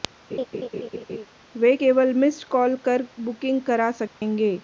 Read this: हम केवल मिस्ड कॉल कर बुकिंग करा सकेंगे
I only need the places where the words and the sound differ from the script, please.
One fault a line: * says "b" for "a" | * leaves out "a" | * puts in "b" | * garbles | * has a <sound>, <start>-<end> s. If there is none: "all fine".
* has a laugh, 0.3-1.3 s
* says "वे" for "हम"
* has a dropout, 4.1-4.2 s